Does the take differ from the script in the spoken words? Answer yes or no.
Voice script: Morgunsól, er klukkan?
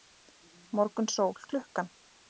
no